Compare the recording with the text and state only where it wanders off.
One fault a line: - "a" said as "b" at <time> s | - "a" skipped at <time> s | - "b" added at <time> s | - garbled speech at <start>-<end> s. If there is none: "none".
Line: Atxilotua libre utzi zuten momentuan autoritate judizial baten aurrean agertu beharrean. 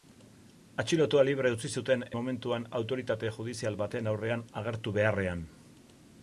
none